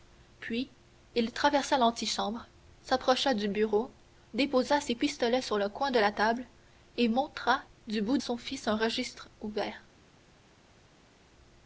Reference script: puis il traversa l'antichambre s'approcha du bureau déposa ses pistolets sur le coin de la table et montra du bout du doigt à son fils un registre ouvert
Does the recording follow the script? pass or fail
fail